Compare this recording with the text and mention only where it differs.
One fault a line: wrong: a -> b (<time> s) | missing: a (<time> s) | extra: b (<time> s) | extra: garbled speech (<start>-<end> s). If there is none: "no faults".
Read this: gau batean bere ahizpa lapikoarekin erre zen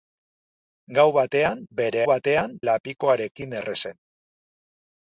wrong: ahizpa -> batean (2.1 s)